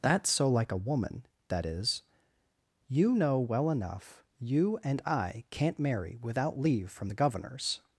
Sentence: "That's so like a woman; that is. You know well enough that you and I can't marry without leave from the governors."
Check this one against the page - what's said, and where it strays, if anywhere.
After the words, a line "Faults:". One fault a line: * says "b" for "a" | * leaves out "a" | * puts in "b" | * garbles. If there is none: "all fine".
"That's so like a woman; that is. You know well enough you and I can't marry without leave from the governors."
Faults:
* leaves out "that"